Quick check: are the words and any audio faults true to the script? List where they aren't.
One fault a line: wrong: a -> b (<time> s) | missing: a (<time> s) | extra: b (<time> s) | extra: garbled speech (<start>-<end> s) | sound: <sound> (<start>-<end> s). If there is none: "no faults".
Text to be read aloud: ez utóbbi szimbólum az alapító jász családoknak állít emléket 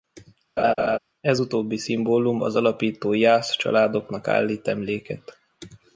sound: laugh (0.6-1.0 s)